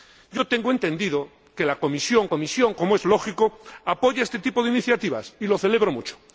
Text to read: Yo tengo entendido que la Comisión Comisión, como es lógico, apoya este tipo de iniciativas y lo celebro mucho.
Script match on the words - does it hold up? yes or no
yes